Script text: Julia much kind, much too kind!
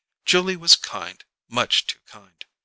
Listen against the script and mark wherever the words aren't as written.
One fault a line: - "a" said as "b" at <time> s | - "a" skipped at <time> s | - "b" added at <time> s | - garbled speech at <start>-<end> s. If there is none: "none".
- "much" said as "was" at 0.6 s